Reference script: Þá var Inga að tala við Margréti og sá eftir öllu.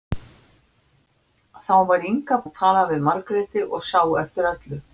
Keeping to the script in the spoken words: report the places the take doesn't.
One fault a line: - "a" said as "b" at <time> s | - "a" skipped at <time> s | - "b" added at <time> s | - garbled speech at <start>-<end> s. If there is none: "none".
none